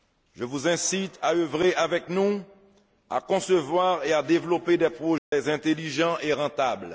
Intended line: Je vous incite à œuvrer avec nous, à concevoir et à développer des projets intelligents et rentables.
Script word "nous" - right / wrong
right